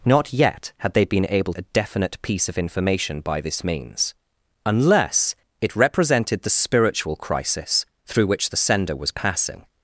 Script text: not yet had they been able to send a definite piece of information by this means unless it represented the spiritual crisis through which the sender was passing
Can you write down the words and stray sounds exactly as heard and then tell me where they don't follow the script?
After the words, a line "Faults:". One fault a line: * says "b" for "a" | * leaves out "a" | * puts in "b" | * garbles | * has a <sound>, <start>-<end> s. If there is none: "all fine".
not yet had they been able a definite piece of information by this means unless it represented the spiritual crisis through which the sender was passing
Faults:
* leaves out "to send"